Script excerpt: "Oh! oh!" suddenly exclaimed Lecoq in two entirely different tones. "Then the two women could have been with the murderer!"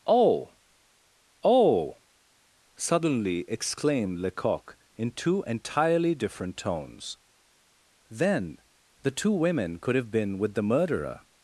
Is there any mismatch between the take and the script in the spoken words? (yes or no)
no